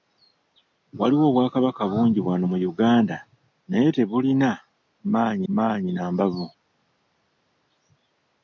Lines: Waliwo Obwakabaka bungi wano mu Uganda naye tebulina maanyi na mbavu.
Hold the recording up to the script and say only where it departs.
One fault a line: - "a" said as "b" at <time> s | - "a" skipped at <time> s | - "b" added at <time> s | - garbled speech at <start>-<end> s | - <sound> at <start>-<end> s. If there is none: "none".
- "maanyi" added at 5.5 s